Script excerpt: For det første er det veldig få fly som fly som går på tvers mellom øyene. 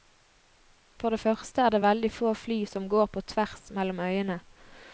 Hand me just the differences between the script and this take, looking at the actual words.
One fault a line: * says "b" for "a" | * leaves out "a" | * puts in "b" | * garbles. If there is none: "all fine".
* leaves out "fly som"